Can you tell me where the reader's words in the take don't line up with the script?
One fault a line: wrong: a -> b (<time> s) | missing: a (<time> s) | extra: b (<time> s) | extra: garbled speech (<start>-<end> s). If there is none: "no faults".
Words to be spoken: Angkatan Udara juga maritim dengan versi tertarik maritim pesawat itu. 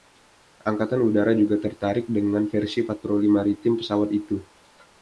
wrong: maritim -> tertarik (1.6 s)
wrong: tertarik -> patroli (2.9 s)